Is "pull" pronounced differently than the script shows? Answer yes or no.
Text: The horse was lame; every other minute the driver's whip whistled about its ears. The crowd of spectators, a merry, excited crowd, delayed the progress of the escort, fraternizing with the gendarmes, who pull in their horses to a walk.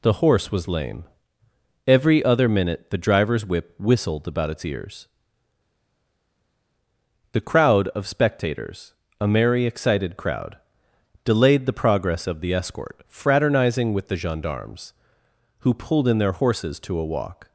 yes